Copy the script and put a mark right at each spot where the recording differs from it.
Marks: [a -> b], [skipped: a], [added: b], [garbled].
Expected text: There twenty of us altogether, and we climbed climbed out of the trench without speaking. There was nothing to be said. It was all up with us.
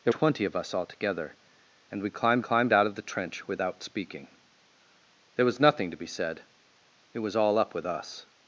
There twenty of us altogether, and we climbed climbed out of the trench without speaking. There was nothing to be said. It was all up with us.